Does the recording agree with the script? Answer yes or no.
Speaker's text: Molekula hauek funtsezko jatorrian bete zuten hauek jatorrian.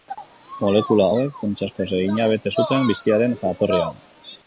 no